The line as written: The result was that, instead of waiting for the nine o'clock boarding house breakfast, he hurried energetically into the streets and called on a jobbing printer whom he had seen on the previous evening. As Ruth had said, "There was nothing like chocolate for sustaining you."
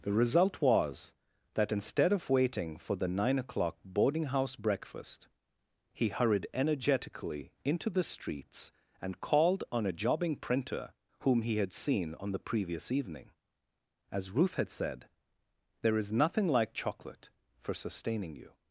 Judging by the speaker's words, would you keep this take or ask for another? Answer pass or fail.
fail